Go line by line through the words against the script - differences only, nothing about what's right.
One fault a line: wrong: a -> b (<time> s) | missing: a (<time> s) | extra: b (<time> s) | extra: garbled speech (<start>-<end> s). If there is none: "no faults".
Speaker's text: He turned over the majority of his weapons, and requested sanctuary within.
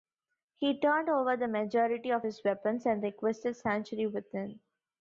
no faults